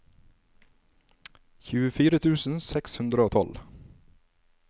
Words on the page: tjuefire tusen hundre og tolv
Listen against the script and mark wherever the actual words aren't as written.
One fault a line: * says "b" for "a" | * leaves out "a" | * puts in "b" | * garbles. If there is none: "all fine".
* puts in "seks"